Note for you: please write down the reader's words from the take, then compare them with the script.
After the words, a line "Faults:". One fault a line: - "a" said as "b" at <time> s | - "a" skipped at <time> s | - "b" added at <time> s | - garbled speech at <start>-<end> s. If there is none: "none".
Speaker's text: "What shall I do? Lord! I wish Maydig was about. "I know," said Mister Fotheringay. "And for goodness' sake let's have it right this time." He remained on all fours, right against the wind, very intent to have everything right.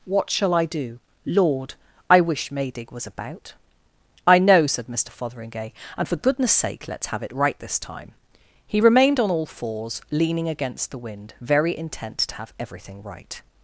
"What shall I do? Lord! I wish Maydig was about. "I know," said Mister Fotheringay. "And for goodness' sake let's have it right this time." He remained on all fours, leaning against the wind, very intent to have everything right.
Faults:
- "right" said as "leaning" at 10.1 s